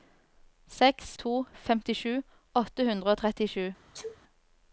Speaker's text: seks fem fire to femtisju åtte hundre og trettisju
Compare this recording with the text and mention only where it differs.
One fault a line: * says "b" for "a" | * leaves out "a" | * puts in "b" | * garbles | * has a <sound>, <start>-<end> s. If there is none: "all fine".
* leaves out "fem fire"
* has a sneeze, 3.9-4.2 s